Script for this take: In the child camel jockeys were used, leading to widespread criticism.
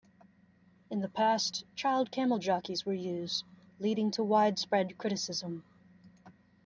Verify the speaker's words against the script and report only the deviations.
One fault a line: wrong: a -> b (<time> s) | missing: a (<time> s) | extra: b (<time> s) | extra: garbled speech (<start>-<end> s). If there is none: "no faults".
extra: past (1.1 s)